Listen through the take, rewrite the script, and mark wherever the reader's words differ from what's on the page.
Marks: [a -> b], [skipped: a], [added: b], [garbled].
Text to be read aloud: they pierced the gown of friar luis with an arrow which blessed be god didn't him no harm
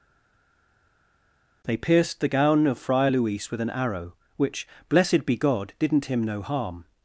they pierced the gown of friar luis with an arrow which blessed be god didn't him no harm